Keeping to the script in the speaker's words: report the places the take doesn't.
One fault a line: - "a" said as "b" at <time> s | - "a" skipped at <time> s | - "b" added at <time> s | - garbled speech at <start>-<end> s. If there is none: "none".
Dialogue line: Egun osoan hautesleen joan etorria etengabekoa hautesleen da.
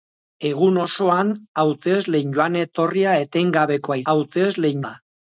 none